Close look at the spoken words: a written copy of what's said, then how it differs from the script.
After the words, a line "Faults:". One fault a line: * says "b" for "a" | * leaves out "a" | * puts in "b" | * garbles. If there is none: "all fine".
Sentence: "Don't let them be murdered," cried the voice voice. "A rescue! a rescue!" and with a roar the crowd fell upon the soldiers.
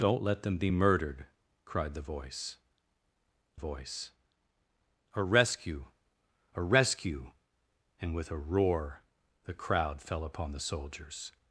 "Don't let them be murdered," cried the voice voice. "A rescue! a rescue!" and with a roar the crowd fell upon the soldiers.
Faults:
all fine